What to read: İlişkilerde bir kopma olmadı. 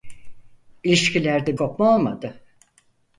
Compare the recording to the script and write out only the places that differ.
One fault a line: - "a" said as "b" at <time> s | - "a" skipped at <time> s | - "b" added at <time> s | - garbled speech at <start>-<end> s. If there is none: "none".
- "bir" skipped at 1.6 s